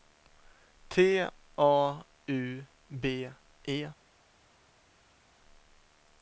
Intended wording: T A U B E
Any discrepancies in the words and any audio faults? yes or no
no